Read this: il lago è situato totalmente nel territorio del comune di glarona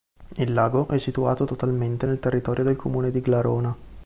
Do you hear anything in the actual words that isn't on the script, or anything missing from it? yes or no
no